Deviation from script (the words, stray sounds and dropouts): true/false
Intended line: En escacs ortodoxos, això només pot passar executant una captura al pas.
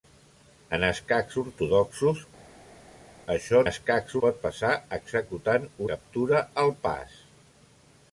true